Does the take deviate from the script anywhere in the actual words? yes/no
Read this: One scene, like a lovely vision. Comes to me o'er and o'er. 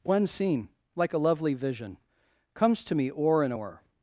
no